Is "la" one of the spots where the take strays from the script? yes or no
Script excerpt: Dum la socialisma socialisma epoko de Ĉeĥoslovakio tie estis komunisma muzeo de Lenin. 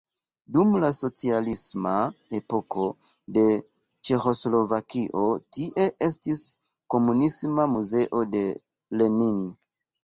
no